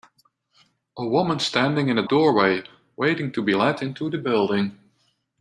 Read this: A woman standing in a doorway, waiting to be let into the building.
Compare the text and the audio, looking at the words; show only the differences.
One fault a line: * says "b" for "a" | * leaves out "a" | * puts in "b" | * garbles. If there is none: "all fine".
all fine